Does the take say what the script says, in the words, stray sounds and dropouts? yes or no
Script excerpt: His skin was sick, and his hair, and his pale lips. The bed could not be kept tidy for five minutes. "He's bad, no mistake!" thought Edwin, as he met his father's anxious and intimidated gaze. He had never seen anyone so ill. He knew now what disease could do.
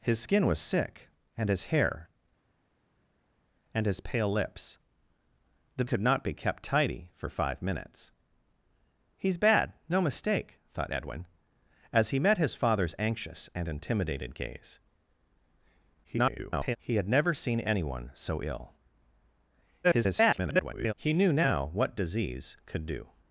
no